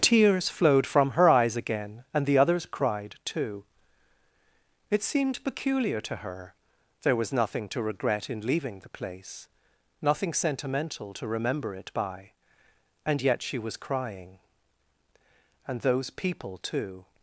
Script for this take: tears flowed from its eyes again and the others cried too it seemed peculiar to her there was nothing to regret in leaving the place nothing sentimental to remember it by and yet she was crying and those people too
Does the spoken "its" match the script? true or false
false